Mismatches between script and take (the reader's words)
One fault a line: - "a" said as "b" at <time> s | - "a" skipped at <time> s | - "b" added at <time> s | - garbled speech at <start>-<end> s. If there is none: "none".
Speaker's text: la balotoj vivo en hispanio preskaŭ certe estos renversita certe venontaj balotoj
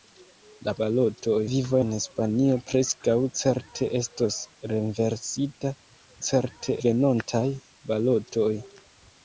none